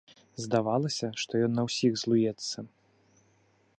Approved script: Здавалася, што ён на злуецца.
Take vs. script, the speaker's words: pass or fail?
fail